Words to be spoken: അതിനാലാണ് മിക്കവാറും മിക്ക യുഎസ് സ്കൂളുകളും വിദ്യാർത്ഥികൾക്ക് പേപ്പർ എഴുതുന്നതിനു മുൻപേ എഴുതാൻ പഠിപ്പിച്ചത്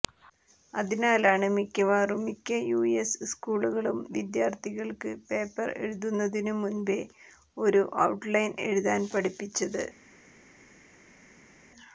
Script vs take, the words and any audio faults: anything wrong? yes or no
yes